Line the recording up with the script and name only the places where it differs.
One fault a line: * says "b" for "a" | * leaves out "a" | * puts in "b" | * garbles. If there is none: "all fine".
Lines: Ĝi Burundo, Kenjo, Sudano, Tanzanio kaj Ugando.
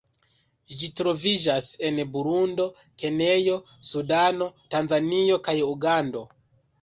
* puts in "troviĝas en"